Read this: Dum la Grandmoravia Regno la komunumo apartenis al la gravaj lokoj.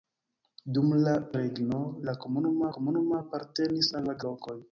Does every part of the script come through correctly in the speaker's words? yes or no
no